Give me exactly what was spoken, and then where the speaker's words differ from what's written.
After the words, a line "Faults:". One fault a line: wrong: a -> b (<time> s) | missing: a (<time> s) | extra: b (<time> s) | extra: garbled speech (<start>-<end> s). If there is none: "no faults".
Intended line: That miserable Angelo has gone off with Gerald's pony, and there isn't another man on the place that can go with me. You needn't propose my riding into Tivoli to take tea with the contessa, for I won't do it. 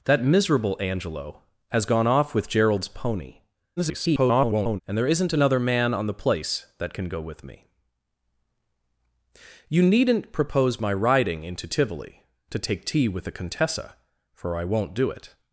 That miserable Angelo has gone off with Gerald's pony, [garbled] and there isn't another man on the place that can go with me. You needn't propose my riding into Tivoli to take tea with the contessa, for I won't do it.
Faults:
extra: garbled speech (3.8-4.8 s)